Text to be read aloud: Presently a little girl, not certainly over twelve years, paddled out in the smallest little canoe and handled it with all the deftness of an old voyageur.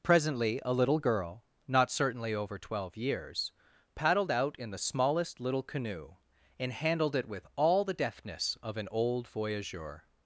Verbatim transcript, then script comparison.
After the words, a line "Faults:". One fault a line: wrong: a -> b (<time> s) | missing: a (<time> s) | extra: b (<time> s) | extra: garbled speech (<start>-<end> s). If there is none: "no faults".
Presently a little girl, not certainly over twelve years, paddled out in the smallest little canoe and handled it with all the deftness of an old voyageur.
Faults:
no faults